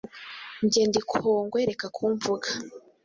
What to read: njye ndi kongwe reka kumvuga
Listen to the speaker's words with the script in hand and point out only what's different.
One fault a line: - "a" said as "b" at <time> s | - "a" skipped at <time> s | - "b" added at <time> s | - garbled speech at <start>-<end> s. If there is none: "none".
none